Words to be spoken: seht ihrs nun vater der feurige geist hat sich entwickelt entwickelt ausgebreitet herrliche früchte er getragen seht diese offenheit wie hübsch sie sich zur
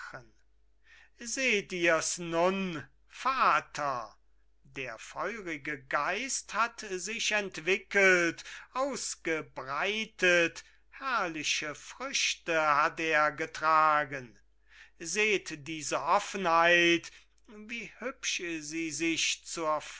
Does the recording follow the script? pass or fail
fail